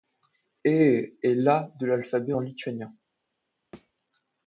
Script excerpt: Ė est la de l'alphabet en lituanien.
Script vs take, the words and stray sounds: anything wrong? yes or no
yes